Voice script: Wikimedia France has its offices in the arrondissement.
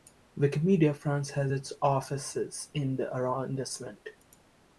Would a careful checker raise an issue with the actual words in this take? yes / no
no